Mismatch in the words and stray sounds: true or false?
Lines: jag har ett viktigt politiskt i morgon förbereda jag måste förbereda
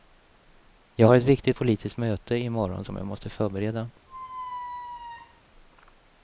true